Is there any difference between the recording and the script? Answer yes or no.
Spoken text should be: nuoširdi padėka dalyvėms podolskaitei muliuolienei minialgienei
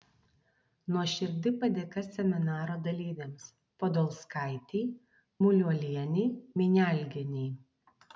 yes